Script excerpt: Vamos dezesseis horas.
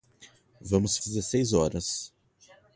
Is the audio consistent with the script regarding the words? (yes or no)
yes